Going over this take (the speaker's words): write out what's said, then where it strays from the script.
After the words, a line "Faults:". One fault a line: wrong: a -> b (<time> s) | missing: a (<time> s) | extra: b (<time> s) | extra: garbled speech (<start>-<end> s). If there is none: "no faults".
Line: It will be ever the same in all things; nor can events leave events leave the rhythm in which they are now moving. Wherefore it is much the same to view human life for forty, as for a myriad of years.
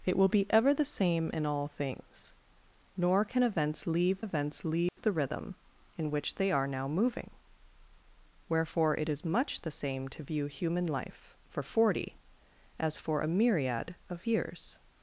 It will be ever the same in all things; nor can events leave events leave the rhythm in which they are now moving. Wherefore it is much the same to view human life for forty, as for a myriad of years.
Faults:
no faults